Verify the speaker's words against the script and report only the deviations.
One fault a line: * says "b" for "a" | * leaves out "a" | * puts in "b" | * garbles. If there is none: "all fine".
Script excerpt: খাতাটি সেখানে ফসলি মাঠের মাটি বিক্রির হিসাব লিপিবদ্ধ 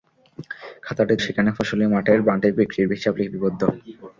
all fine